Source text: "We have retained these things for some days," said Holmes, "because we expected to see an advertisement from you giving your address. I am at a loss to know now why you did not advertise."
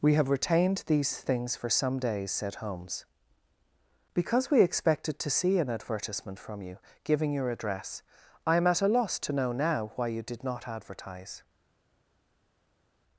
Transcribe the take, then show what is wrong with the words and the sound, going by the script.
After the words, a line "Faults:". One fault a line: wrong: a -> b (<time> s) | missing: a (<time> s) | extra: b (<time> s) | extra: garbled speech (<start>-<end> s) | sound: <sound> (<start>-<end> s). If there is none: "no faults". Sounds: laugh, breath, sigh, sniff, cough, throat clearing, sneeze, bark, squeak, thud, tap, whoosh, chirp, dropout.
"We have retained these things for some days," said Holmes, "because we expected to see an advertisement from you giving your address. I am at a loss to know now why you did not advertise."
Faults:
no faults